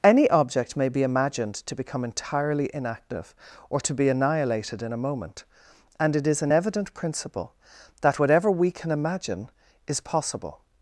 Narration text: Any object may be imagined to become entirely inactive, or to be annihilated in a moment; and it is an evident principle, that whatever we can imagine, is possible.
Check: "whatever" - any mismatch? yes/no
no